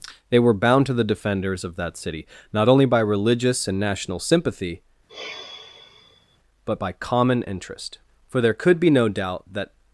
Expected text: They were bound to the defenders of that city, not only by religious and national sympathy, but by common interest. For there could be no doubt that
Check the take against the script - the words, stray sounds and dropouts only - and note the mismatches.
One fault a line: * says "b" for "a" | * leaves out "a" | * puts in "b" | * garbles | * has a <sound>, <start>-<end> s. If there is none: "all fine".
* has a sigh, 5.1-6.4 s